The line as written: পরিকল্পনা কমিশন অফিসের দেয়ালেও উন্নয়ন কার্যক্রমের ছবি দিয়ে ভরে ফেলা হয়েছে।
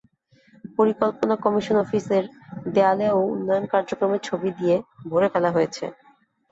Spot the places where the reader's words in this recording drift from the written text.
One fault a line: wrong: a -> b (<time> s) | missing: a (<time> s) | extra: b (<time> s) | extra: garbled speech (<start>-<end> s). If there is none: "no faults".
no faults